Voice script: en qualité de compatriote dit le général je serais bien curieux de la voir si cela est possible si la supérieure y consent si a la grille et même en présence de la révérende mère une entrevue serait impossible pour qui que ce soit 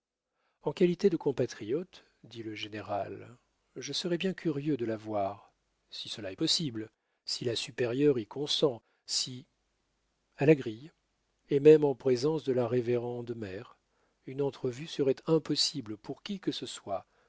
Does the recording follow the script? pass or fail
pass